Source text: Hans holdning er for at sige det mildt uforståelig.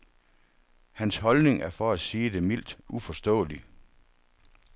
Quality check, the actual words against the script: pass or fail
pass